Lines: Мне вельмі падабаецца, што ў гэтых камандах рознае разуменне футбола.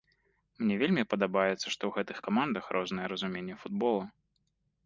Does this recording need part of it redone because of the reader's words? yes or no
no